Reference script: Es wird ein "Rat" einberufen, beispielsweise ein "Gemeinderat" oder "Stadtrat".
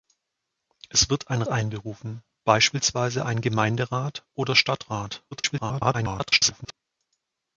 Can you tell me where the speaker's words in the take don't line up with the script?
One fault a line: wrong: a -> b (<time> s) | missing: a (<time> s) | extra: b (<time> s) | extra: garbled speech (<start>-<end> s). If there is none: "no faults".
missing: Rat (1.4 s)
extra: garbled speech (5.3-6.7 s)